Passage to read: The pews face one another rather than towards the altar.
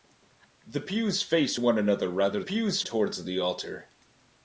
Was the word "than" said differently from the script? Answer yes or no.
yes